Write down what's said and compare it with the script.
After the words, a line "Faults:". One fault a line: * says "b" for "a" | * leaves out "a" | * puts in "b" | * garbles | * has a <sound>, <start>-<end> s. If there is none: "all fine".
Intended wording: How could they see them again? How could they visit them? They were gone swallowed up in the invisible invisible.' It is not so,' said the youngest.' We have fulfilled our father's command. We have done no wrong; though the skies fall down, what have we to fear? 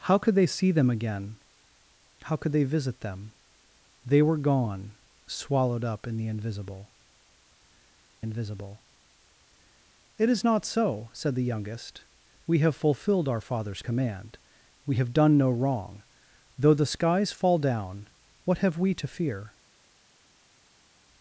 How could they see them again? How could they visit them? They were gone swallowed up in the invisible invisible.' It is not so,' said the youngest.' We have fulfilled our father's command. We have done no wrong; though the skies fall down, what have we to fear?
Faults:
all fine